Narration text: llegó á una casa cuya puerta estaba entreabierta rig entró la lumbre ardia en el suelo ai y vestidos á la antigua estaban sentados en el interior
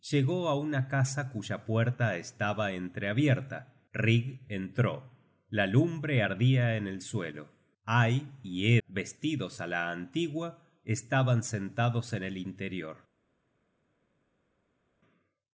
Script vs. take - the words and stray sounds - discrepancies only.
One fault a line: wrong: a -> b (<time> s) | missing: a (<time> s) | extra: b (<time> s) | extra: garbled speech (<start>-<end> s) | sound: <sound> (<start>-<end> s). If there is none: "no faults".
no faults